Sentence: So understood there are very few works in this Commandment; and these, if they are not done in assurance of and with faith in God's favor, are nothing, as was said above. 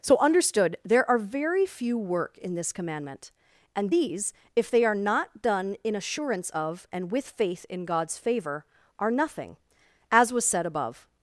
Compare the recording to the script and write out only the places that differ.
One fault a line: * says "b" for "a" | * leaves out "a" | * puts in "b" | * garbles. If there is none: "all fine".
* says "work" for "works"